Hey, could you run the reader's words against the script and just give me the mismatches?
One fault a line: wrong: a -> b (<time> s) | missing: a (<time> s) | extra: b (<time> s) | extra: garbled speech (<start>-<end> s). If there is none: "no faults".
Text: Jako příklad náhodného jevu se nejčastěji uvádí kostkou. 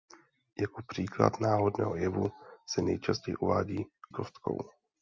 no faults